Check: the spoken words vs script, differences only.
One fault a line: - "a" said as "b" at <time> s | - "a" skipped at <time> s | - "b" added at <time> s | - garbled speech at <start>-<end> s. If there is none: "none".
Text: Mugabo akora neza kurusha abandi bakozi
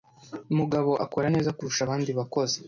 none